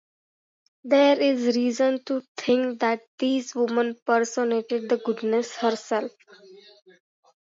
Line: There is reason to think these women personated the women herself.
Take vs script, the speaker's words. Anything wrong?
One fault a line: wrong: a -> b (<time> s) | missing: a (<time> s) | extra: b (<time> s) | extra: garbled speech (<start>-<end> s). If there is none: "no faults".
extra: that (2.8 s)
wrong: women -> goddess (5.0 s)